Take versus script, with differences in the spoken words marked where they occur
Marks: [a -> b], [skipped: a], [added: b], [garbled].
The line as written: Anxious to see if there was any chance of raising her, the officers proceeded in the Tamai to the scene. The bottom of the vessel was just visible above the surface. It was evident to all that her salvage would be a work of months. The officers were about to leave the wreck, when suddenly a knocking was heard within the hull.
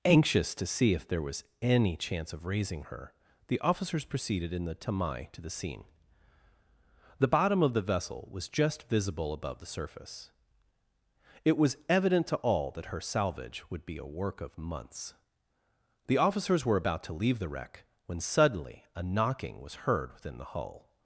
Anxious to see if there was any chance of raising her, the officers proceeded in the Tamai to the scene. The bottom of the vessel was just visible above the surface. It was evident to all that her salvage would be a work of months. The officers were about to leave the wreck, when suddenly a knocking was heard within the hull.